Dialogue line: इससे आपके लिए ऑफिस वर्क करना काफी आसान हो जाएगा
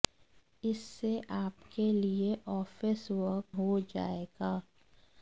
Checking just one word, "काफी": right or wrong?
wrong